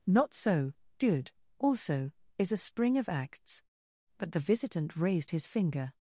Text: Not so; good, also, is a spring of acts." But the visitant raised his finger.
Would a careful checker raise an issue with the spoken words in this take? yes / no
no